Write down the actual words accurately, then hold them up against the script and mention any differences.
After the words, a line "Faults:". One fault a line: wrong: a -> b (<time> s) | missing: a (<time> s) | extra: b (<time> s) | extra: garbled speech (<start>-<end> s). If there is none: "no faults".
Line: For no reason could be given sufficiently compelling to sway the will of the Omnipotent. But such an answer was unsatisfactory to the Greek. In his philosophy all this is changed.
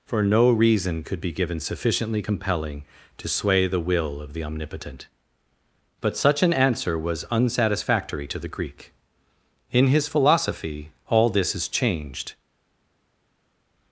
For no reason could be given sufficiently compelling to sway the will of the Omnipotent. But such an answer was unsatisfactory to the Greek. In his philosophy all this is changed.
Faults:
no faults